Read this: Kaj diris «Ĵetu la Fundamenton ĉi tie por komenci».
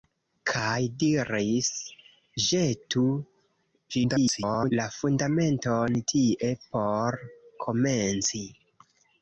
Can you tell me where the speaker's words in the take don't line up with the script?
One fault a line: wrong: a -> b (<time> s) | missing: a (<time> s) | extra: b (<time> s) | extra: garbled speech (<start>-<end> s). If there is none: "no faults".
extra: garbled speech (3.9-4.7 s)
missing: ĉi (6.0 s)